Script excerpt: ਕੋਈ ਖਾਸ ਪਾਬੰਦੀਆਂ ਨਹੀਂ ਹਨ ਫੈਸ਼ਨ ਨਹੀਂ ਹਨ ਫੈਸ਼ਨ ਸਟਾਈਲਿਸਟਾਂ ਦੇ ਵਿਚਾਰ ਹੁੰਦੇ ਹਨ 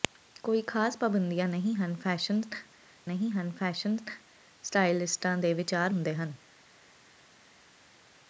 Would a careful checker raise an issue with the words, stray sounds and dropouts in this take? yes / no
no